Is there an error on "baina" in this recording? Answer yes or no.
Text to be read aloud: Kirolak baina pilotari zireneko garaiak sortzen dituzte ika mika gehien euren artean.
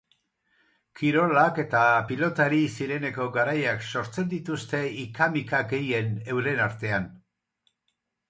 yes